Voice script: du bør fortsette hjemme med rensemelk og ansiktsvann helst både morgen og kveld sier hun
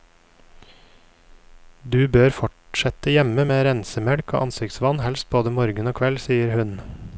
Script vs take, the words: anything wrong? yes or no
no